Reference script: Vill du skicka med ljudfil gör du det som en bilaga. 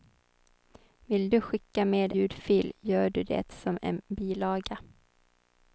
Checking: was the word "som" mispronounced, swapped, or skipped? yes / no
no